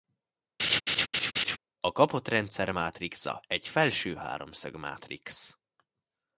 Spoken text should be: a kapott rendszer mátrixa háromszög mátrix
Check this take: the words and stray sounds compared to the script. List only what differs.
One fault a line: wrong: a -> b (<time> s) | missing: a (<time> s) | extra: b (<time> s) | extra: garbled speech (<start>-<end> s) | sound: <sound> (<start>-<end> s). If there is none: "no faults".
sound: laugh (0.6-1.6 s)
extra: egy felső (3.5 s)